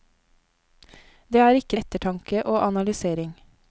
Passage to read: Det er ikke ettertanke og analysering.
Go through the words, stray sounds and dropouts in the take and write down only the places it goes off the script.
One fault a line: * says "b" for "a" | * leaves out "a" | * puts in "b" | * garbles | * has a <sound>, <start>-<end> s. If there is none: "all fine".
all fine